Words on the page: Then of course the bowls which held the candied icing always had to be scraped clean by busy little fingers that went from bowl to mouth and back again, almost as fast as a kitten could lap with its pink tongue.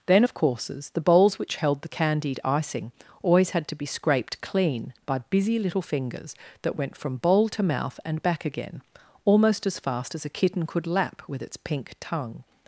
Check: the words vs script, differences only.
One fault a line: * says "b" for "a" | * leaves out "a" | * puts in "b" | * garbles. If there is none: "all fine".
* says "courses" for "course"